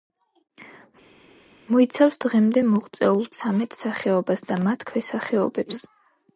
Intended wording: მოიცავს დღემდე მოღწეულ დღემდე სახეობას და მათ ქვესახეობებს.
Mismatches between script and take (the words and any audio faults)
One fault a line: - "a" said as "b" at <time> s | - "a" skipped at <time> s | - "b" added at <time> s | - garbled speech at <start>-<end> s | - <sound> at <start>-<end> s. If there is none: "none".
- "დღემდე" said as "ცამეტ" at 3.4 s